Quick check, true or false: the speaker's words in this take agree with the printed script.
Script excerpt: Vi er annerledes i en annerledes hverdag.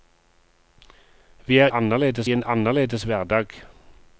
true